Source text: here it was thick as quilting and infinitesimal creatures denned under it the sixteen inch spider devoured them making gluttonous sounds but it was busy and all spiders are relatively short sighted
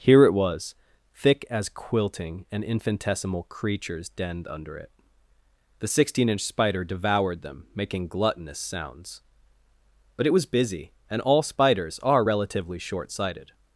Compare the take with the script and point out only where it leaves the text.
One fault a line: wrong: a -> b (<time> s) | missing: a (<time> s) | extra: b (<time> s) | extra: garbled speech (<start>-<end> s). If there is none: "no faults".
no faults